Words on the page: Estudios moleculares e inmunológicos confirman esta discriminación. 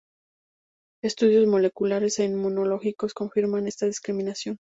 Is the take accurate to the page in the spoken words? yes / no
yes